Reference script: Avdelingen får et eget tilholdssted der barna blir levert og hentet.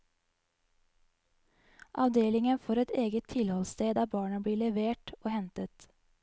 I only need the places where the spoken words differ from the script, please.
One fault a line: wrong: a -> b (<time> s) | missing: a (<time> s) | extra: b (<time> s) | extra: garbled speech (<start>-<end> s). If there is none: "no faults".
no faults